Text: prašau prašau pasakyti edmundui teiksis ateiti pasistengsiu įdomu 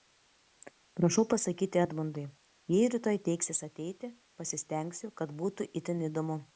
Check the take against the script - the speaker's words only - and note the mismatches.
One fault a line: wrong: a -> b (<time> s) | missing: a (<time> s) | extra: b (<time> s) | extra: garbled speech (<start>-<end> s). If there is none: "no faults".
missing: prašau (1.2 s)
extra: jei rytoj (2.8 s)
extra: kad būtų itin (5.2 s)